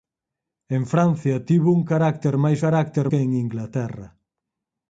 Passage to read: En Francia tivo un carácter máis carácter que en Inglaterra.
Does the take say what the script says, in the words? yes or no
yes